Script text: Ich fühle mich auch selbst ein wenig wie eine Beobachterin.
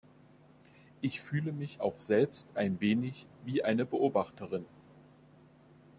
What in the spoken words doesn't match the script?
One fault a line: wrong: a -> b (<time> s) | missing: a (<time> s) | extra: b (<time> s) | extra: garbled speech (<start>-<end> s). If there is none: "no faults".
no faults